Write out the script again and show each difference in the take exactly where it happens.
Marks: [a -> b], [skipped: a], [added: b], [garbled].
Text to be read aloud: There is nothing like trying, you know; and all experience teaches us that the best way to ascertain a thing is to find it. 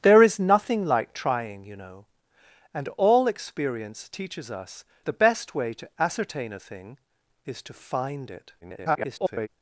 There is nothing like trying, you know; and all experience teaches us [skipped: that] the best way to ascertain a thing is to find it. [garbled]